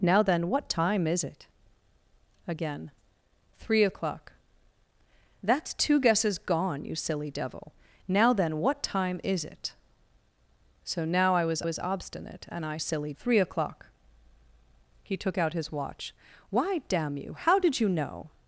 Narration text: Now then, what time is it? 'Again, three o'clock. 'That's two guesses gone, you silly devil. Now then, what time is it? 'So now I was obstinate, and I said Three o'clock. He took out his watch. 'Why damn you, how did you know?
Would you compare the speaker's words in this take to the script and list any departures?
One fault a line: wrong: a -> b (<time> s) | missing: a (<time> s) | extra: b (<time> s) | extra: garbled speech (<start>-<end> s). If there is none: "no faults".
extra: was (11.6 s)
wrong: said -> silly (12.8 s)